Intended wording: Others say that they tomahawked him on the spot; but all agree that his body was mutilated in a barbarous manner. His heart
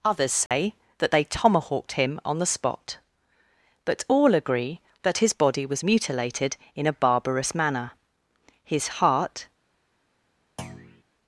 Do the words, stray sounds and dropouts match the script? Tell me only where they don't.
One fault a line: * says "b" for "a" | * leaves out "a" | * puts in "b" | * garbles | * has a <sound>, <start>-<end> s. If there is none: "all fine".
* has a dropout, 0.5-0.5 s
* has a thud, 10.6-11.0 s